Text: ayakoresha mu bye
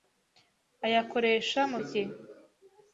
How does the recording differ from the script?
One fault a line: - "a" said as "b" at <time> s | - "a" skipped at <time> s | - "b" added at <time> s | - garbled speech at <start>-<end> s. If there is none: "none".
none